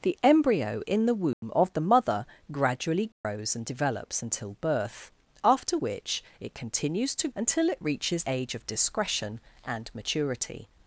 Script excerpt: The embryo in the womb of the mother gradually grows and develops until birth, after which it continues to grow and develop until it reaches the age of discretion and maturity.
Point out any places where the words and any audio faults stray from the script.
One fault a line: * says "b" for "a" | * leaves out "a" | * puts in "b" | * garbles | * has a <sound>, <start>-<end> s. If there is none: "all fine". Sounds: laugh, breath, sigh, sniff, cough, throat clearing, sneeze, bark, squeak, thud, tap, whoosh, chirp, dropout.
* has a dropout, 1.3-1.4 s
* has a dropout, 3.1-3.2 s
* leaves out "grow and develop"
* leaves out "the"